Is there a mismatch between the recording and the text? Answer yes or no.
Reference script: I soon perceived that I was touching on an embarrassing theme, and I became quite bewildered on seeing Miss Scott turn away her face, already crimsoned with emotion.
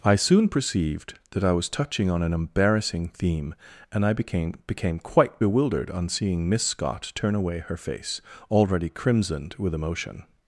yes